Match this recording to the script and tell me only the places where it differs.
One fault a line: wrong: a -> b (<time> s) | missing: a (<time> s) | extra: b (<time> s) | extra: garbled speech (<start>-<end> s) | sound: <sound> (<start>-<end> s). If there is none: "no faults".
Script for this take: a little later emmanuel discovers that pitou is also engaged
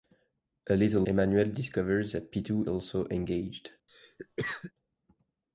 missing: later (1.0 s)
missing: is (2.7 s)
sound: cough (3.9-4.7 s)